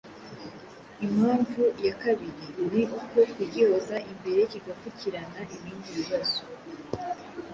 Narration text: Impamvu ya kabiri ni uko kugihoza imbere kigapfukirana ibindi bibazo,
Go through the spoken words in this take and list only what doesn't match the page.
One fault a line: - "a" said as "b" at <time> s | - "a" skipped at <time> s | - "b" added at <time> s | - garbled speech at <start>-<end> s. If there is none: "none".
none